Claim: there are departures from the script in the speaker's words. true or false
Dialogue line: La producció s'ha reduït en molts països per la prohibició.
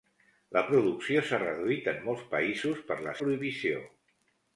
false